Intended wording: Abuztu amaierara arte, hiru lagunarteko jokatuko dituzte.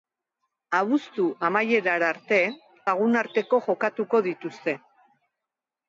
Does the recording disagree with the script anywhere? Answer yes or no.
yes